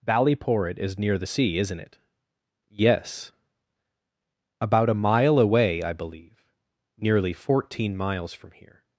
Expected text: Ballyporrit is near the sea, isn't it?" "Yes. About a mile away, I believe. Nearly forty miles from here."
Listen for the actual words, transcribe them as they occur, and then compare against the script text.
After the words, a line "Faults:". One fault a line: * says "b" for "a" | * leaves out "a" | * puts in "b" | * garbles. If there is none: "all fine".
Ballyporrit is near the sea, isn't it?" "Yes. About a mile away, I believe. Nearly fourteen miles from here."
Faults:
* says "fourteen" for "forty"